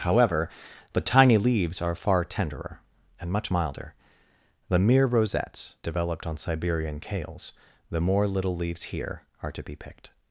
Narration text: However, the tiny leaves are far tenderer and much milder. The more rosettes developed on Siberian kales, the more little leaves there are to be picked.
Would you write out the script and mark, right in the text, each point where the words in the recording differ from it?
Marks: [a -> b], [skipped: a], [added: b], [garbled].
However, the tiny leaves are far tenderer and much milder. The [more -> mere] rosettes developed on Siberian kales, the more little leaves [there -> here] are to be picked.